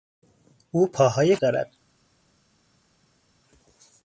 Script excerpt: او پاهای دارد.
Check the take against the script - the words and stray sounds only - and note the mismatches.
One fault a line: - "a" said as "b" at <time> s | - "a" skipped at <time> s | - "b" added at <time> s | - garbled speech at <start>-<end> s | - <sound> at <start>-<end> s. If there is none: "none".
none